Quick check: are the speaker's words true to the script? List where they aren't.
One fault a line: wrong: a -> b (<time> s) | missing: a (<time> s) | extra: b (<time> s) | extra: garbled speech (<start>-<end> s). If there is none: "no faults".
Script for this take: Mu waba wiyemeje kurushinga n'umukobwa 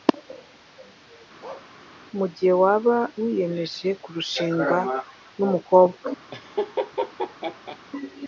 extra: gihe (2.3 s)